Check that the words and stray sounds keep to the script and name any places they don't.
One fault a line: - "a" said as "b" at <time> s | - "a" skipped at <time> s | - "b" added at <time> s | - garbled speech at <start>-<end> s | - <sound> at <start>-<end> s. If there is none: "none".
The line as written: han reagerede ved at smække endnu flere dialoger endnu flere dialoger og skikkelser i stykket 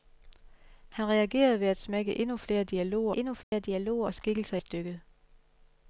- dropout at 3.4-3.5 s